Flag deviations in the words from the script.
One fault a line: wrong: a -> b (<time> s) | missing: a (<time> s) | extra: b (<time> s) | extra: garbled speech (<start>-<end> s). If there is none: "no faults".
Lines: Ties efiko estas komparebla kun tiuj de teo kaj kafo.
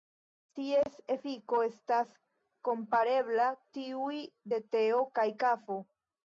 missing: kun (3.5 s)